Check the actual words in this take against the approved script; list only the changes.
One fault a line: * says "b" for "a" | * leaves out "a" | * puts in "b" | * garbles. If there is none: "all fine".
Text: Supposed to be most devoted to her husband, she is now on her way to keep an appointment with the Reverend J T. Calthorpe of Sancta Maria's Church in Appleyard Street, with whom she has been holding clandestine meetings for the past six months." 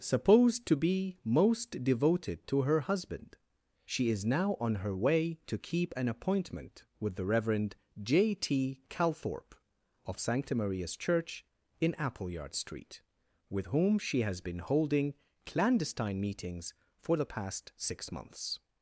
all fine